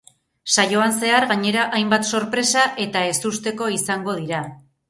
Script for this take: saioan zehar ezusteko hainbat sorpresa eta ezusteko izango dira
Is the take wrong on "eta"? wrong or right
right